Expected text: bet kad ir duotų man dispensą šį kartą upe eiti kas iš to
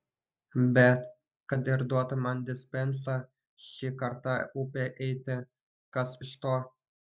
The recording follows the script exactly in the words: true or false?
true